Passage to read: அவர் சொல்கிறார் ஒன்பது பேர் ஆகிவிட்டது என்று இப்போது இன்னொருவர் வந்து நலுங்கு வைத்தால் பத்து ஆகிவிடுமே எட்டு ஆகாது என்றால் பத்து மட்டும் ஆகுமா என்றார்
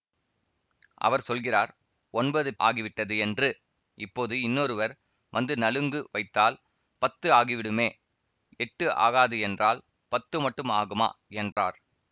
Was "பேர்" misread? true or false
true